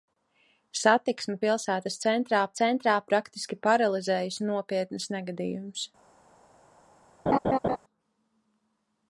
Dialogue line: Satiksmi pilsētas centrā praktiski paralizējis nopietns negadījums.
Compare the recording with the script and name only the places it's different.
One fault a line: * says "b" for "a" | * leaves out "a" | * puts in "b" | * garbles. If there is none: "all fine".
* puts in "centrā"